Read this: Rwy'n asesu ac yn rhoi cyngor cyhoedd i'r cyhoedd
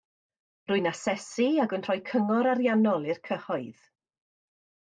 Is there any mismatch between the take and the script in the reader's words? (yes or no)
yes